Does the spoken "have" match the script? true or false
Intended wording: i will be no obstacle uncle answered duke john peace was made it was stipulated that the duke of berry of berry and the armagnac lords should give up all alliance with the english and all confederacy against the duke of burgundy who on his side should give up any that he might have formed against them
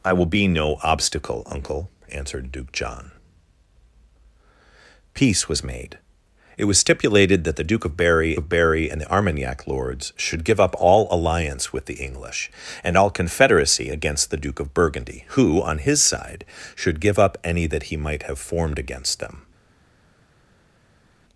true